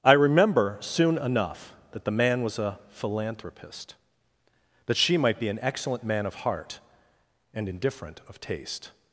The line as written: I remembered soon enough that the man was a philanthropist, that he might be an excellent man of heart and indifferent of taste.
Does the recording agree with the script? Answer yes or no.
no